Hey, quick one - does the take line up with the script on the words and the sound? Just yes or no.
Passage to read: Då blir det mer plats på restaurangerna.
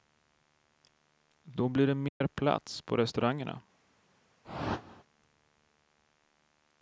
no